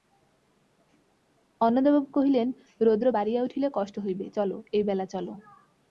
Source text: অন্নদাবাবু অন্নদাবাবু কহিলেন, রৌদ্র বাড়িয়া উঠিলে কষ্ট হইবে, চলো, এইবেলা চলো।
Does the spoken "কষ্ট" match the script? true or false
true